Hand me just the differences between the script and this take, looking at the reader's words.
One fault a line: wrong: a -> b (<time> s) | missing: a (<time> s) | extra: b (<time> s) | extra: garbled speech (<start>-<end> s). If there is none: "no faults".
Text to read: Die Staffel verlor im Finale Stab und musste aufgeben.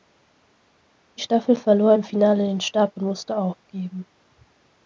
extra: den (2.5 s)